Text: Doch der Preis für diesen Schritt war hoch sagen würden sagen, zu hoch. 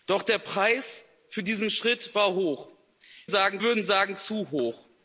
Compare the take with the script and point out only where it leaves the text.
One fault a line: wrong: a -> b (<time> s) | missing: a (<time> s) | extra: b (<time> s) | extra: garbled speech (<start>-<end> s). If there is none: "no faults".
no faults